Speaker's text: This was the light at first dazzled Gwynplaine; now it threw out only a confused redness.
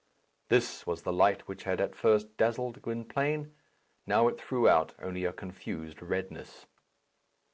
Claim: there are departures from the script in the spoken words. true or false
true